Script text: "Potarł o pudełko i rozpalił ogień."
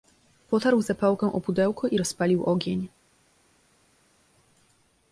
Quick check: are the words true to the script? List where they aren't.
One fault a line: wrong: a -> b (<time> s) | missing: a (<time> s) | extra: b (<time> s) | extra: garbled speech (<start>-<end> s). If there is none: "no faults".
extra: zapałkę (0.8 s)